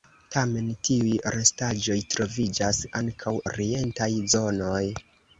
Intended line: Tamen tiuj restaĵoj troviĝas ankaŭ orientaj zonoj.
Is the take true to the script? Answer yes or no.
yes